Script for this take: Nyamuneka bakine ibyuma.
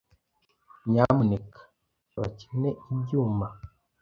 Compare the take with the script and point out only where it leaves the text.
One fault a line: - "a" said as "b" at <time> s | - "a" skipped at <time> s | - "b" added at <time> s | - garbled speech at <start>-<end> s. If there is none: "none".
none